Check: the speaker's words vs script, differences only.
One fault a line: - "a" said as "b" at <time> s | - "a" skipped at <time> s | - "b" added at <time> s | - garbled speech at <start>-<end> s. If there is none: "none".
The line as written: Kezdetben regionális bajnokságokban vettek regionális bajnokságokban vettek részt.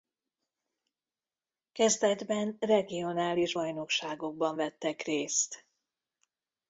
- "regionális bajnokságokban vettek" skipped at 5.0 s